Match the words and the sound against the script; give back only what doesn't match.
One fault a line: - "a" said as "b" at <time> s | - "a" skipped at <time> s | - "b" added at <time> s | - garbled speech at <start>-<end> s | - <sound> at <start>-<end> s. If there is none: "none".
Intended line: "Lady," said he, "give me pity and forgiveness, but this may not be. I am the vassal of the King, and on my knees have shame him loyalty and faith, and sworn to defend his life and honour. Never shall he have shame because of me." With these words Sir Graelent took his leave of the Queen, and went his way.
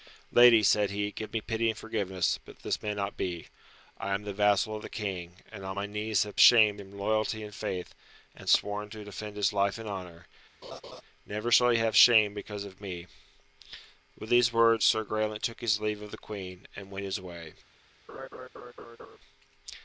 - laugh at 10.6-11.0 s
- laugh at 18.1-19.2 s